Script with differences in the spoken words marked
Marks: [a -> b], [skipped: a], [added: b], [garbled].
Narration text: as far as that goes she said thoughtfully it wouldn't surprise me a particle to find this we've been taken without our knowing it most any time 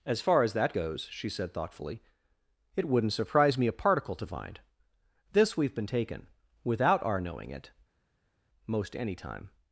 as far as that goes she said thoughtfully it wouldn't surprise me a particle to find this we've been taken without our knowing it most any time